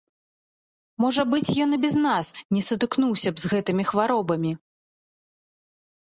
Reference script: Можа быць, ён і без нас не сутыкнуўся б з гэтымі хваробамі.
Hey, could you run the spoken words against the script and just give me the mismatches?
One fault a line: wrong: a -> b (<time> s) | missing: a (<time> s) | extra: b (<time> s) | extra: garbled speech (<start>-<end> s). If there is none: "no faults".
no faults